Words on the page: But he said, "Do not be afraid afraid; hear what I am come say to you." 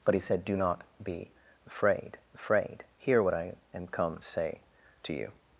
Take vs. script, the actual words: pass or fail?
pass